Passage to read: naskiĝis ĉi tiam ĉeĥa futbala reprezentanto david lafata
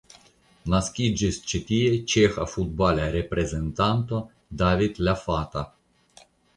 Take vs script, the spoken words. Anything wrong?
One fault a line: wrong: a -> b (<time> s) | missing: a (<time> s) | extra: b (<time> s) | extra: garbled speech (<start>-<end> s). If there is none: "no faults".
wrong: tiam -> tie (1.7 s)